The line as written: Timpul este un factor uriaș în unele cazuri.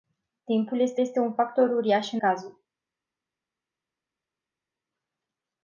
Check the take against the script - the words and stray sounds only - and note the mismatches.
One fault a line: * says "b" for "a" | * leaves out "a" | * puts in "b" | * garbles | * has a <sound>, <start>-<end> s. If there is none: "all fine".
* puts in "este"
* leaves out "unele"